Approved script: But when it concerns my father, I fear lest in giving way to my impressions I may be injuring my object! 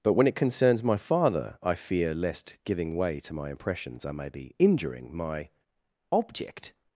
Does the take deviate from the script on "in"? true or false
true